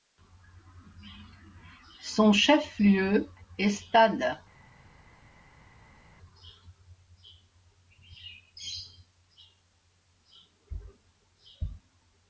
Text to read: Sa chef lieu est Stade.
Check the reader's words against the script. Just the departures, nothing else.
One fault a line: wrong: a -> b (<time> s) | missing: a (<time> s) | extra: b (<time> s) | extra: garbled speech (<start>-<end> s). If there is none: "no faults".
wrong: Sa -> Son (2.0 s)